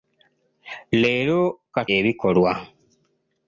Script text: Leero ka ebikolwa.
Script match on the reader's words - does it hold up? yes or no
yes